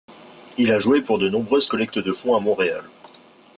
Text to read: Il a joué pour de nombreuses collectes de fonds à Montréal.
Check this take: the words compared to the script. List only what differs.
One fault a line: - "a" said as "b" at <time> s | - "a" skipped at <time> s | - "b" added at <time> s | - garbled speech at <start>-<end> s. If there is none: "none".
none